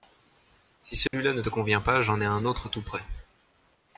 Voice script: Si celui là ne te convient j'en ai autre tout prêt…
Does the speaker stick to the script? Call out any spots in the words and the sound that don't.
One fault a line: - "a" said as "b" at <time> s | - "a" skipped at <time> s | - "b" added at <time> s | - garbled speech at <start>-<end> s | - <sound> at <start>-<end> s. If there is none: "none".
- dropout at 1.1-1.1 s
- "pas" added at 1.8 s
- "un" added at 2.2 s